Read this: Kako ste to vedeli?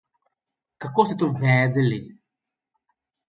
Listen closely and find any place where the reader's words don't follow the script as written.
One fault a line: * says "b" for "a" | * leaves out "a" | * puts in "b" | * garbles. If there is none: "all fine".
all fine